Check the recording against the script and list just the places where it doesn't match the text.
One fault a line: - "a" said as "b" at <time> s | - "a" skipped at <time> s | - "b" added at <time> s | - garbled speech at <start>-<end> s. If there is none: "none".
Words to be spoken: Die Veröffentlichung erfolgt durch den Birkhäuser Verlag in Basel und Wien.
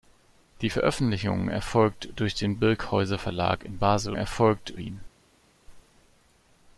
- "und" said as "erfolgt" at 4.1 s